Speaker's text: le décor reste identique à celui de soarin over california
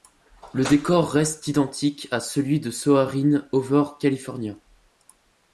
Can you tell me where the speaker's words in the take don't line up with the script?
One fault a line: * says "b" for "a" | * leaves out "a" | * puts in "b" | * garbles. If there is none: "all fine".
all fine